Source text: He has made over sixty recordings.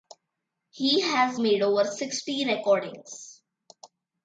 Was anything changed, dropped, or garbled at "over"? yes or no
no